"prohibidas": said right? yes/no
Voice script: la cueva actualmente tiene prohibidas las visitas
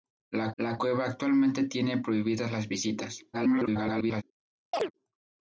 yes